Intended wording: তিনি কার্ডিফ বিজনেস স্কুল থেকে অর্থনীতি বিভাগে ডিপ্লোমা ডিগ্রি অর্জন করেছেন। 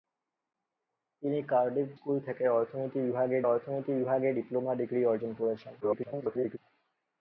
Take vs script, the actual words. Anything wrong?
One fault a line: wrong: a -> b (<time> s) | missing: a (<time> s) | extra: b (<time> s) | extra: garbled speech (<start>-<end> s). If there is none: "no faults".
missing: বিজনেস (1.9 s)
extra: অর্থনীতি বিভাগে (3.4 s)
extra: garbled speech (5.8-6.6 s)